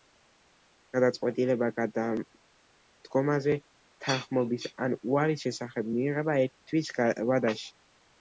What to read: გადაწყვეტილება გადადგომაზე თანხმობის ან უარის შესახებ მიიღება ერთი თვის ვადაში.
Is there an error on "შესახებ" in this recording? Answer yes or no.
no